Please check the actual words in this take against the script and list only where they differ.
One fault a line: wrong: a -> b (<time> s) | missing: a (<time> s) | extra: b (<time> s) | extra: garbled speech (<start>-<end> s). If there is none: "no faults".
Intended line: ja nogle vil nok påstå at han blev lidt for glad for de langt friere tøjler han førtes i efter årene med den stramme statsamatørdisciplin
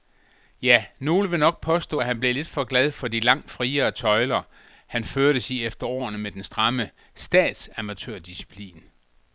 no faults